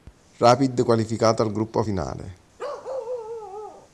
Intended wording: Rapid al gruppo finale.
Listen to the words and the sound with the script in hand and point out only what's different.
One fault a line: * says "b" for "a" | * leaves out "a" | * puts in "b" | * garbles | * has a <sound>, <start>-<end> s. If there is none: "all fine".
* puts in "qualificato"
* has a bark, 2.6-3.9 s